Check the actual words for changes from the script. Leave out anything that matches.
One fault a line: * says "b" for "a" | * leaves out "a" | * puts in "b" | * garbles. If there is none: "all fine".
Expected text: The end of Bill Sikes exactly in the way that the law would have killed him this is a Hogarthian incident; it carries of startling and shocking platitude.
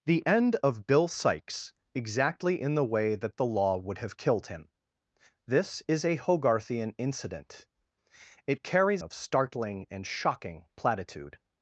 all fine